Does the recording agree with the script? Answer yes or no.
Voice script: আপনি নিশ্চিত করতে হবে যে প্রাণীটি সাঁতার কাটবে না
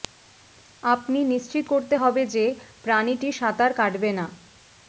yes